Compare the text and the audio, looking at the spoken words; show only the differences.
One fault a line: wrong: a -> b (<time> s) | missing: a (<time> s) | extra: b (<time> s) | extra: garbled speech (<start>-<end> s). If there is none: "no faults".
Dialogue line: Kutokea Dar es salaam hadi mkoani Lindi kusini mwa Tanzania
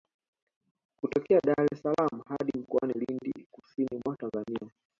no faults